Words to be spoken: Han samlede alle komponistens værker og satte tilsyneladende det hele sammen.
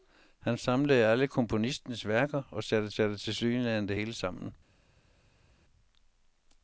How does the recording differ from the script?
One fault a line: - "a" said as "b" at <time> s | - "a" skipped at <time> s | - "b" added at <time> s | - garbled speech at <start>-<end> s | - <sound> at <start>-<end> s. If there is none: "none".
- "satte" added at 2.9 s